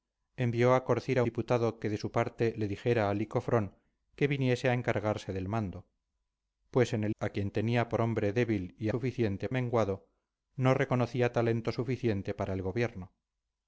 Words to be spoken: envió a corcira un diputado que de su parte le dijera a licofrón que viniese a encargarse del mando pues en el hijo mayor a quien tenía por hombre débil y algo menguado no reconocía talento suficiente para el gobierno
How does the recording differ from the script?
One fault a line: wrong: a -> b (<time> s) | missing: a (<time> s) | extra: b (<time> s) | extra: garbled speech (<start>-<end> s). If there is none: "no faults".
missing: un (1.2 s)
missing: hijo mayor (7.1 s)
wrong: algo -> suficiente (8.9 s)